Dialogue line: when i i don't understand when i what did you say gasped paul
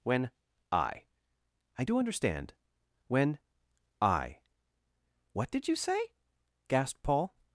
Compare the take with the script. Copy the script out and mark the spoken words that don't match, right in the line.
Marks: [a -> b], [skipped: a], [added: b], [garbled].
when i i [don't -> do] understand when i what did you say gasped paul